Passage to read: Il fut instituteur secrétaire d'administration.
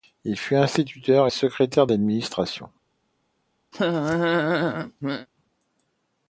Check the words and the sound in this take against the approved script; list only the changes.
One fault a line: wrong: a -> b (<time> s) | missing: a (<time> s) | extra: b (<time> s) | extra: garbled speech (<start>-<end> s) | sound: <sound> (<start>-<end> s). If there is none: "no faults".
sound: laugh (3.7-5.3 s)